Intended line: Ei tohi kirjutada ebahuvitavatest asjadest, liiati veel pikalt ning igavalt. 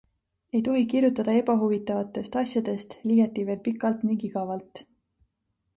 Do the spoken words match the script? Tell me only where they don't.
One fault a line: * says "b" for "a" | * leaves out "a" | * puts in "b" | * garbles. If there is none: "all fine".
all fine